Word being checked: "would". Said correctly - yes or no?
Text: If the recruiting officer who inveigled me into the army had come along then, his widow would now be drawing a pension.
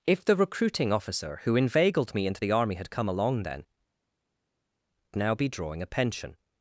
no